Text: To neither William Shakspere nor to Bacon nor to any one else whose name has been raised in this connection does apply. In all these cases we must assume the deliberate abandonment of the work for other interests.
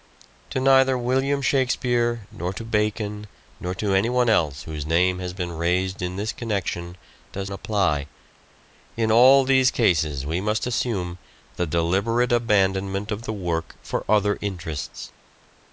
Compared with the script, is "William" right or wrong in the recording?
right